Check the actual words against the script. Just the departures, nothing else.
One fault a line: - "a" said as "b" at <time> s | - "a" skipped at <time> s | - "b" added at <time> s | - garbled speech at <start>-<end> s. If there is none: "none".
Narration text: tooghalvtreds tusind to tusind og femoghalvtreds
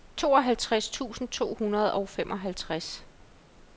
- "tusind" said as "hundrede" at 1.6 s